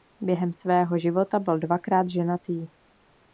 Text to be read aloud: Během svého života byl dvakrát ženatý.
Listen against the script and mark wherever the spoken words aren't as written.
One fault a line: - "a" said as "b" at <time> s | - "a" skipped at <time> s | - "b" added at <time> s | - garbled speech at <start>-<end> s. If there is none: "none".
none